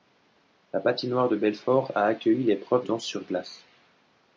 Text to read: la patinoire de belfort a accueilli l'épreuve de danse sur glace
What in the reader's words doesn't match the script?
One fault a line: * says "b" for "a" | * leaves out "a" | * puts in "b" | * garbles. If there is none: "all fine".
* leaves out "de"